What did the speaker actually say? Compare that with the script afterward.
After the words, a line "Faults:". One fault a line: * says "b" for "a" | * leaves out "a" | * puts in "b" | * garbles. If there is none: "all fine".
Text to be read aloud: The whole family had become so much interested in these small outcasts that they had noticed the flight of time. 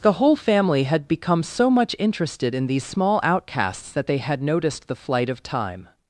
The whole family had become so much interested in these small outcasts that they had noticed the flight of time.
Faults:
all fine